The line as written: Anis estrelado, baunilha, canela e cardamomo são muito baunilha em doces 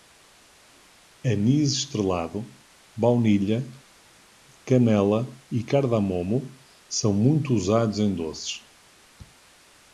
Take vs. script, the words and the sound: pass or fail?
fail